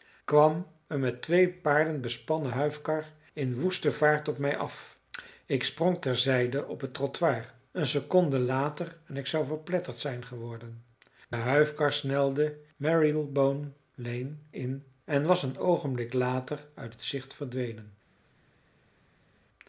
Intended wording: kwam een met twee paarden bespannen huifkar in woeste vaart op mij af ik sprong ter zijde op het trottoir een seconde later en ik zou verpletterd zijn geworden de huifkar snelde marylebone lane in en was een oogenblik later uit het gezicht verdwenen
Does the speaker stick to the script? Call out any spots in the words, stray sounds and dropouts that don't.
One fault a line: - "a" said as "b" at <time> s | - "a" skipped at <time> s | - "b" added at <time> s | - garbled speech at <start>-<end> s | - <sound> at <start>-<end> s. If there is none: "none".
none